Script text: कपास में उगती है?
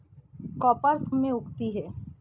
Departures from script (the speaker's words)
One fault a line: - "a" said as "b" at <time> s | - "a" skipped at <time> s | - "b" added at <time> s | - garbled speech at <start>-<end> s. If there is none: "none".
none